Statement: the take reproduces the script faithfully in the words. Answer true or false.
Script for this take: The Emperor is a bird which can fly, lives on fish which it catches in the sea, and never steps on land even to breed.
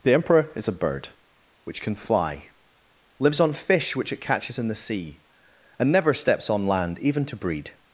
true